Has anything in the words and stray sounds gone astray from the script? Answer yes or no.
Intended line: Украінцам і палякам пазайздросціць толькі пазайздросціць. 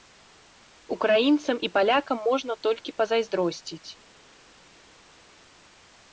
yes